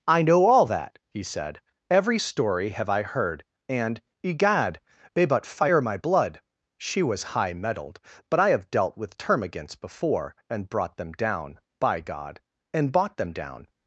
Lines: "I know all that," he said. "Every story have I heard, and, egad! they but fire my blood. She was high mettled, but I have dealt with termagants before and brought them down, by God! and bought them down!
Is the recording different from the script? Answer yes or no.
no